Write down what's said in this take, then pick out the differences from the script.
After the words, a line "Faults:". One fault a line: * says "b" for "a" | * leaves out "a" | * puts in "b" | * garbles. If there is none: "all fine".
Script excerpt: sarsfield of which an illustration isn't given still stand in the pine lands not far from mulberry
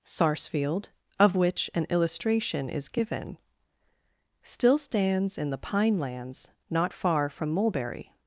sarsfield of which an illustration is given still stands in the pine lands not far from mulberry
Faults:
* says "is" for "isn't"
* says "stands" for "stand"